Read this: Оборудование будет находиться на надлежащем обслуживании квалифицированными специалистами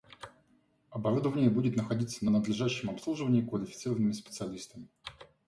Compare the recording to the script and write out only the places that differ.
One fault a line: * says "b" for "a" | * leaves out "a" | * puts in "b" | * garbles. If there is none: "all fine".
all fine